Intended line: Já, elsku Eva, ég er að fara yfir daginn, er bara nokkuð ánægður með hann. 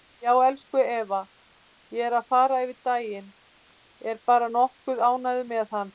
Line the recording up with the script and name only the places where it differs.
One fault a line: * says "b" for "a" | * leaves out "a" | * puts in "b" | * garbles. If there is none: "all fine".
all fine